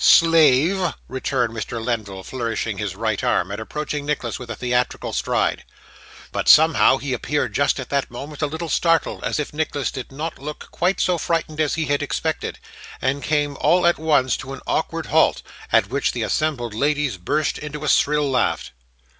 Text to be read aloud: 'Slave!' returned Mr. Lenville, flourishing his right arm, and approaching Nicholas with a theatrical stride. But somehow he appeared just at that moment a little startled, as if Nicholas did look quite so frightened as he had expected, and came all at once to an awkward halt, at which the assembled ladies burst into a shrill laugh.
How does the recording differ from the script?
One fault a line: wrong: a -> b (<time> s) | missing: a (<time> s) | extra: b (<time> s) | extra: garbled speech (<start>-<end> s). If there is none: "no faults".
extra: not (10.1 s)